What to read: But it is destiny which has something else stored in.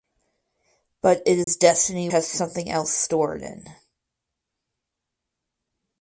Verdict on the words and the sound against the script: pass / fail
fail